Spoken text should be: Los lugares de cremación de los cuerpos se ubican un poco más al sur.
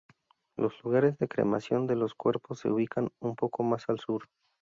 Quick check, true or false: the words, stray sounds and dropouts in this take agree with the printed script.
true